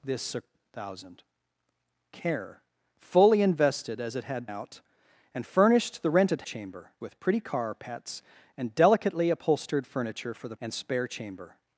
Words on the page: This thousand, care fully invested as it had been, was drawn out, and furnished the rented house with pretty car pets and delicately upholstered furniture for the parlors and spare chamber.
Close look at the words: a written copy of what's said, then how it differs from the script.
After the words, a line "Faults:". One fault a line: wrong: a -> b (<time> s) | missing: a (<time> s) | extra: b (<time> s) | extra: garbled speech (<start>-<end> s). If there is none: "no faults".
This thousand, care fully invested as it had out, and furnished the rented chamber with pretty car pets and delicately upholstered furniture for the and spare chamber.
Faults:
missing: been was drawn (4.5 s)
wrong: house -> chamber (6.4 s)
missing: parlors (10.6 s)